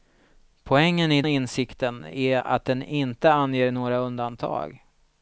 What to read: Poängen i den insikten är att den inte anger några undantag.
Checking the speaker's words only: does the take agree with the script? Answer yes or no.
no